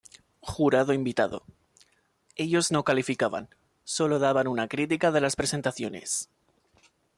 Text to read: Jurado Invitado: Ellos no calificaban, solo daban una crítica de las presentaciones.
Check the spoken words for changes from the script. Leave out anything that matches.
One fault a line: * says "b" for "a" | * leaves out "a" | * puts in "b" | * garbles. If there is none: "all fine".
all fine